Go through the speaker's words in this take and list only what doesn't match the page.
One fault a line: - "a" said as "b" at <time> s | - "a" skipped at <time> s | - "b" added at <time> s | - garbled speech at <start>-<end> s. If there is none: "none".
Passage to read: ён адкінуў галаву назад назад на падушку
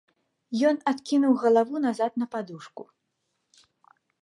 - "назад" skipped at 2.1 s